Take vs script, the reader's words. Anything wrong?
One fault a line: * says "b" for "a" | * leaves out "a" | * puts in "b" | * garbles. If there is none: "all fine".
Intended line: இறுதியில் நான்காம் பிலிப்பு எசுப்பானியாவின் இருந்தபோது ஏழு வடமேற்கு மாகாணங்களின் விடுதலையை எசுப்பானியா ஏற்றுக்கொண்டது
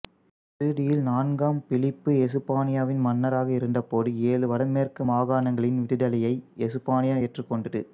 * puts in "மன்னராக"